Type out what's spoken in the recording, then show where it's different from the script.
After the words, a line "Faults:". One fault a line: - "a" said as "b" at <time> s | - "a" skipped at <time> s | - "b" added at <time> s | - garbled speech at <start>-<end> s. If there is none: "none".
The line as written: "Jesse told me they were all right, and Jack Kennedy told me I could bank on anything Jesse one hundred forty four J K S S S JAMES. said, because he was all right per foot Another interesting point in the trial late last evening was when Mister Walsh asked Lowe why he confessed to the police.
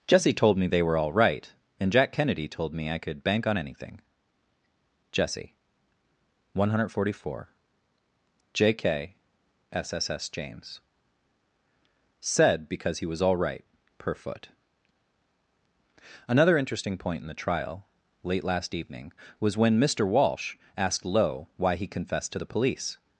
"Jesse told me they were all right, and Jack Kennedy told me I could bank on anything Jesse one hundred forty four J K S S S JAMES. said, because he was all right per foot Another interesting point in the trial late last evening was when Mister Walsh asked Lowe why he confessed to the police.
Faults:
none